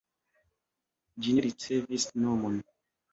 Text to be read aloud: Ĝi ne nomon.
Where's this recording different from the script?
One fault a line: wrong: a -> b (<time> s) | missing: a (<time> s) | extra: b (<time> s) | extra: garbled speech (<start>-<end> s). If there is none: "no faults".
extra: ricevis (1.5 s)